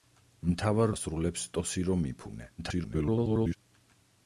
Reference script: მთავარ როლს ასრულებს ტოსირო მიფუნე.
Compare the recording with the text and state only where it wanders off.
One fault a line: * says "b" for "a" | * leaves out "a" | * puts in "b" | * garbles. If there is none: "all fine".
* leaves out "როლს"
* garbles